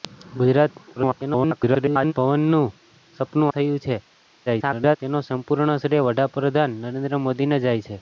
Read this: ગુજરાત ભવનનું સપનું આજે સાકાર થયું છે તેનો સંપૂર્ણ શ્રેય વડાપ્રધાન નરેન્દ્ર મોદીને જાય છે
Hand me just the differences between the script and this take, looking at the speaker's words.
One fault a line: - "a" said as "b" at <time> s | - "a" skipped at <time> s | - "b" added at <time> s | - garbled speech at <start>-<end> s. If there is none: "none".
- garbled speech at 1.0-2.1 s
- "આજે સાકાર" skipped at 3.5 s
- garbled speech at 4.5-5.0 s